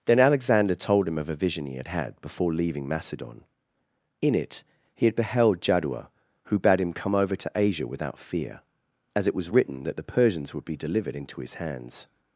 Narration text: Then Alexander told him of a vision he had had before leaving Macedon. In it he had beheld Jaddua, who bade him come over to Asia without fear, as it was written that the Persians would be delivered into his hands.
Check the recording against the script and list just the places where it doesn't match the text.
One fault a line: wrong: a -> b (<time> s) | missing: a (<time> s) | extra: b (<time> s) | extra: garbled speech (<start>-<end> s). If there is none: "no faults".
no faults